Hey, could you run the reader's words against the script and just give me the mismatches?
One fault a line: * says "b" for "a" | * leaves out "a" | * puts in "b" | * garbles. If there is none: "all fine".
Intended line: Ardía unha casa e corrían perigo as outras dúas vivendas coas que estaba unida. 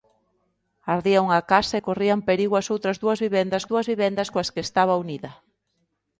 * puts in "dúas vivendas"